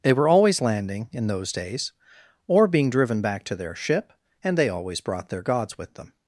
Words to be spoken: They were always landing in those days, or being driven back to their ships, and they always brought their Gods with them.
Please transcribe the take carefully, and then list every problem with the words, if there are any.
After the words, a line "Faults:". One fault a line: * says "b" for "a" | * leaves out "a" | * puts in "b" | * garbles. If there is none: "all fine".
They were always landing in those days, or being driven back to their ship, and they always brought their Gods with them.
Faults:
* says "ship" for "ships"